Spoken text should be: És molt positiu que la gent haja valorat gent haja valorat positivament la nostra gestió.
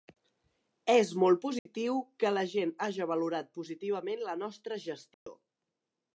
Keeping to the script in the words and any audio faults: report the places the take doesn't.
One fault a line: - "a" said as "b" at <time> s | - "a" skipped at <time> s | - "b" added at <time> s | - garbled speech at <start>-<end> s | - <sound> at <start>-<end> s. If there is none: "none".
- dropout at 1.6-1.7 s
- "gent haja valorat" skipped at 3.5 s
- dropout at 5.1-5.3 s